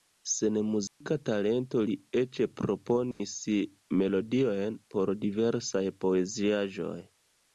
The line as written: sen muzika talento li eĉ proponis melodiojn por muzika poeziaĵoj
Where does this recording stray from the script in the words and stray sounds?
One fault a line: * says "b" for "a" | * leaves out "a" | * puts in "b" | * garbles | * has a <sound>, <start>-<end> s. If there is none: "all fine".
* has a dropout, 0.9-1.0 s
* has a dropout, 3.1-3.2 s
* says "diversaj" for "muzika"